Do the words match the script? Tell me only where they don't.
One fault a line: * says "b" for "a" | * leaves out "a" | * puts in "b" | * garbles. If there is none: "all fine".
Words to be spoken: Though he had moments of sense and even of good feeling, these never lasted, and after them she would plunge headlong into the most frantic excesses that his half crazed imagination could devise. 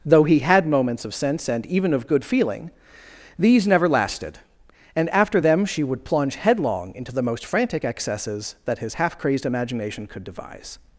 all fine